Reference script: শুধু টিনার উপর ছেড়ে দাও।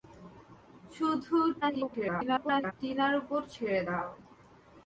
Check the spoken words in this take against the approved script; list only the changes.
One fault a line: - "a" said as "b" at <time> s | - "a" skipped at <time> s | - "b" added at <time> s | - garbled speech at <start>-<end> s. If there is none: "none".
- garbled speech at 1.6-2.7 s